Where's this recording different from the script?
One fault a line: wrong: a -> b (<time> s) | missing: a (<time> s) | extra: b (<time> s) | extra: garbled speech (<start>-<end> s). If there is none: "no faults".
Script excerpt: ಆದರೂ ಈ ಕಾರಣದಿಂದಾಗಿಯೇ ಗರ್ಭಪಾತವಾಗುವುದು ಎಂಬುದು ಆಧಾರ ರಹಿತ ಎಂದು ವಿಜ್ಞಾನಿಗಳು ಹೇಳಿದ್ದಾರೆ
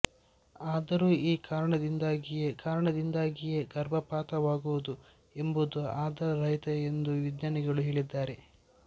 extra: ಕಾರಣದಿಂದಾಗಿಯೇ (2.6 s)